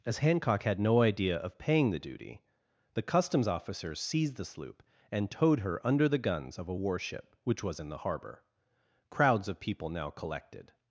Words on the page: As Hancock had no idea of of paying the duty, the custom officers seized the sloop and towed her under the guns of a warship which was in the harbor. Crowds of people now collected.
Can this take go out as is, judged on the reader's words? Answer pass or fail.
fail